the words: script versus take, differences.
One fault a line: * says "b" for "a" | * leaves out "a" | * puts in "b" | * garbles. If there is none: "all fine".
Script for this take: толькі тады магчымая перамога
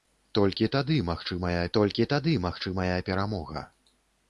* puts in "толькі тады магчымая"